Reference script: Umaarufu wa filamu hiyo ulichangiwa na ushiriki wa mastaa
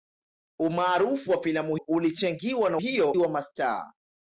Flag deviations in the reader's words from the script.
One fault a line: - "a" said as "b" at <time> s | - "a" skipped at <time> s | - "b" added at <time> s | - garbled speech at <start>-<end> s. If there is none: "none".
- "hiyo" skipped at 1.8 s
- "ushiriki" said as "hiyo" at 2.8 s